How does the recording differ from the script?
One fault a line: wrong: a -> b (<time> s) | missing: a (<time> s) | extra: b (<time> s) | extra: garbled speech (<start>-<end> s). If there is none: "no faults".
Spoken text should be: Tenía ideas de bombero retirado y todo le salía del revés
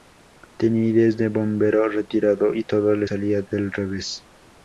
no faults